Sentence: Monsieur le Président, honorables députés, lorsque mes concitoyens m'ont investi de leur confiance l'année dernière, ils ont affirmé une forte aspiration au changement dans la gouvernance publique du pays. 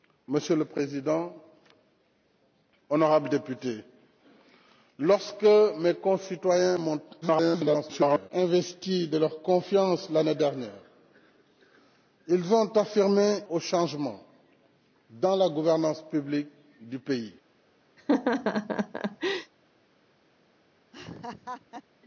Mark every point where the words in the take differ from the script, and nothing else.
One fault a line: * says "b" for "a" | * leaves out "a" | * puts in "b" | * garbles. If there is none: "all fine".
* garbles
* leaves out "une forte aspiration"